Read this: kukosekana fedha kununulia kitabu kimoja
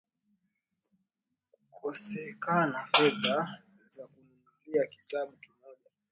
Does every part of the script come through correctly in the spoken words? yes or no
no